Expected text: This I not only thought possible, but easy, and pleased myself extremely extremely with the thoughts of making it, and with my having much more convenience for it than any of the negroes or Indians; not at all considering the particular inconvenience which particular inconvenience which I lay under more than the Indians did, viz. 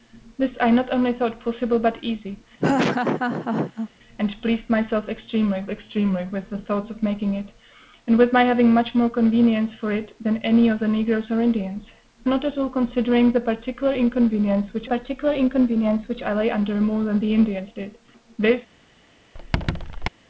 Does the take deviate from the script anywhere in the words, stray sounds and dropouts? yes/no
yes